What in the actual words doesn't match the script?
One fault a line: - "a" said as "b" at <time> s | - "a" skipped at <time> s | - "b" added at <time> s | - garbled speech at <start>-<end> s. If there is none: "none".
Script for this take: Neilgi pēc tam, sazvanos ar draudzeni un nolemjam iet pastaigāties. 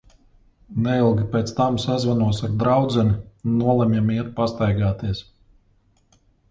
none